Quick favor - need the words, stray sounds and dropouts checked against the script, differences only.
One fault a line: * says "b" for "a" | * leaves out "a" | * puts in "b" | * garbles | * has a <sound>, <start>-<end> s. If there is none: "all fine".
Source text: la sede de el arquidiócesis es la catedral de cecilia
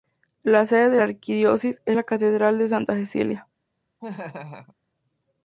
* says "la" for "el"
* puts in "santa"
* has a laugh, 4.0-4.8 s